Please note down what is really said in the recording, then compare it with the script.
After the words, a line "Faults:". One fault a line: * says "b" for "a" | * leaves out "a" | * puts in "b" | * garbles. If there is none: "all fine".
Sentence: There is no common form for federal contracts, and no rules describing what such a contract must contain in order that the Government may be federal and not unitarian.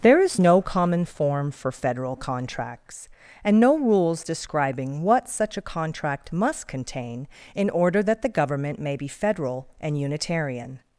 There is no common form for federal contracts, and no rules describing what such a contract must contain in order that the Government may be federal and unitarian.
Faults:
* leaves out "not"